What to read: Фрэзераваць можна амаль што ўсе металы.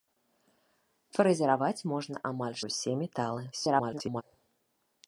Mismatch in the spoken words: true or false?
true